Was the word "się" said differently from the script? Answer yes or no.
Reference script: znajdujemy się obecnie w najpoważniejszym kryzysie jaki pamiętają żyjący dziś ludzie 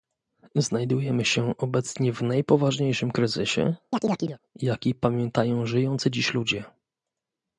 no